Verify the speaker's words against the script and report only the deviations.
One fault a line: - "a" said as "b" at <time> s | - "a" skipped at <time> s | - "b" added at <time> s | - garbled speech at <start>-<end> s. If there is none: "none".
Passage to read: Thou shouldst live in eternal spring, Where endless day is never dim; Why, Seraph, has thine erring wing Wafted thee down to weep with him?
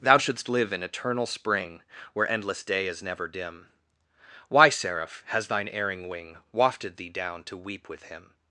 none